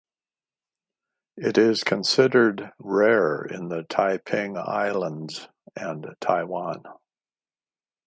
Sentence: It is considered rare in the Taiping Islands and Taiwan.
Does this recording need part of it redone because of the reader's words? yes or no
no